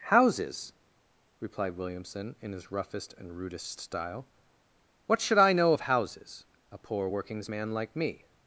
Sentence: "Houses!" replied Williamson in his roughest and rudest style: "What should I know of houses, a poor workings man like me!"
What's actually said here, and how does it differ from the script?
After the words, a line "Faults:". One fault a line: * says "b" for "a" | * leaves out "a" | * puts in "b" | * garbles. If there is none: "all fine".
"Houses!" replied Williamson in his roughest and rudest style: "What should I know of houses, a poor workings man like me!"
Faults:
all fine